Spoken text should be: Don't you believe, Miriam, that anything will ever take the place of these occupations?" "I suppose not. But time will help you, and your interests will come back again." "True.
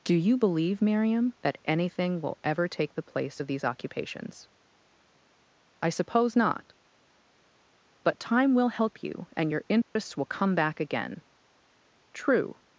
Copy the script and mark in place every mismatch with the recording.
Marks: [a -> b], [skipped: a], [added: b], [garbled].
[Don't -> Do] you believe, Miriam, that anything will ever take the place of these occupations?" "I suppose not. But time will help you, and your interests will come back again." "True.